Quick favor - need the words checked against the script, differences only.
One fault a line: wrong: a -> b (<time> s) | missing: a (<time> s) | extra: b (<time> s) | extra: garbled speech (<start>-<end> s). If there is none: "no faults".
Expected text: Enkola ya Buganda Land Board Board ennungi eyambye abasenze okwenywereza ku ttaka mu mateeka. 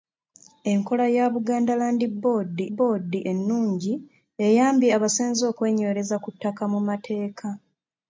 no faults